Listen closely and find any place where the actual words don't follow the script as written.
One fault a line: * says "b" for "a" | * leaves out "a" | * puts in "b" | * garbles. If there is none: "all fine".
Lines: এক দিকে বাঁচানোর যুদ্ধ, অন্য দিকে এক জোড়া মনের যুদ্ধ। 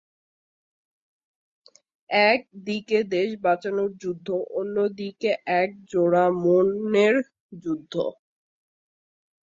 * puts in "দেশ"